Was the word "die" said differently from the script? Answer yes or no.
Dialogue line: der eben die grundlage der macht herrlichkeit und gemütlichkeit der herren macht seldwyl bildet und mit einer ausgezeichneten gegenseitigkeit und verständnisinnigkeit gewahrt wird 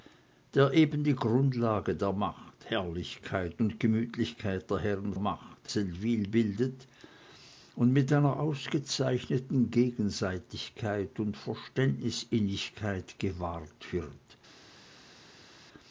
no